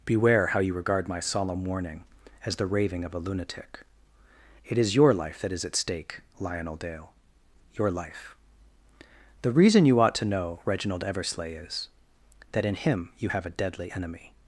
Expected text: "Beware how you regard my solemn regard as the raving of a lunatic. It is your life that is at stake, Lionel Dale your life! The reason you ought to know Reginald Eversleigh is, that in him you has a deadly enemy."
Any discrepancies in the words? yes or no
yes